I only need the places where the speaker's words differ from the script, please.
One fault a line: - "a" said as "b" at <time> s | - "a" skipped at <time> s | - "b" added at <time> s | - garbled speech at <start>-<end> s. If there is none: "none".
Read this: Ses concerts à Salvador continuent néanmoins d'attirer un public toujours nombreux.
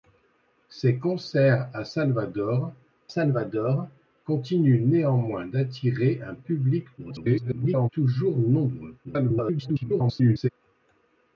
- "Salvador" added at 3.1 s
- garbled speech at 7.0-7.9 s
- garbled speech at 9.0-10.5 s